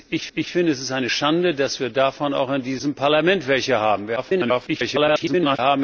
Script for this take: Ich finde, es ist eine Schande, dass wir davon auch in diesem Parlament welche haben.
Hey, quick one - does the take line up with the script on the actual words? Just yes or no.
no